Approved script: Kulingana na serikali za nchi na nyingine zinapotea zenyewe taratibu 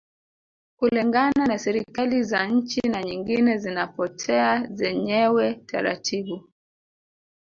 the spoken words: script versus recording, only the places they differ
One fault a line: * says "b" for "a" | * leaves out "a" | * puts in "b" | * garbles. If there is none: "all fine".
all fine